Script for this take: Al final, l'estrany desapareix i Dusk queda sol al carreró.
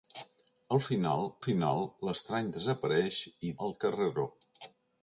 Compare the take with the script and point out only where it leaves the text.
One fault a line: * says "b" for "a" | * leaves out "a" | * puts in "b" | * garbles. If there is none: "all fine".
* puts in "final"
* leaves out "Dusk queda sol"